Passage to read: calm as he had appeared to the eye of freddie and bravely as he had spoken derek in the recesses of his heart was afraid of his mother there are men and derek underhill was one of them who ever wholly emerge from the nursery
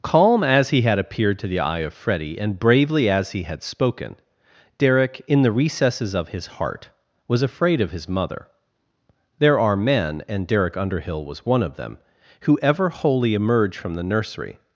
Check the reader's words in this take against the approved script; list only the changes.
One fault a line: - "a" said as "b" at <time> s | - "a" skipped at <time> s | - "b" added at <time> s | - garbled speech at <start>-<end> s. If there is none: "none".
none